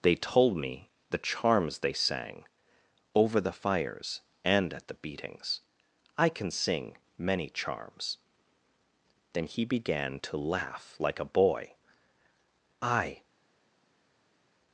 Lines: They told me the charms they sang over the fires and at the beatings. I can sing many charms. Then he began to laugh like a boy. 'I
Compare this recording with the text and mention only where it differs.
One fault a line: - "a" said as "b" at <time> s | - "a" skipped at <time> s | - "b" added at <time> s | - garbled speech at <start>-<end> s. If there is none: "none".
none